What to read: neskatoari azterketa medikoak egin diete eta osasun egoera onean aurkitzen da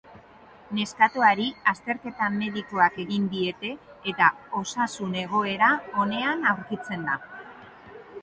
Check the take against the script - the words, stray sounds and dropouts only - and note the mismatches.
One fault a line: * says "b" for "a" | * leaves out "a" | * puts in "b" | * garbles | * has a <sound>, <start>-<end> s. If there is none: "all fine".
all fine